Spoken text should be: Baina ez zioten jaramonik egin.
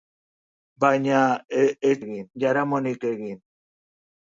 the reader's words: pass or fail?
fail